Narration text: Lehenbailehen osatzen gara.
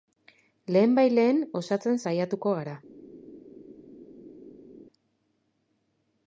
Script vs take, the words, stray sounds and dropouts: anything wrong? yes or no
yes